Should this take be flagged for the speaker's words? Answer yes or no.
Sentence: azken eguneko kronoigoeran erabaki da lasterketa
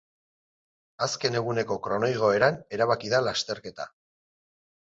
no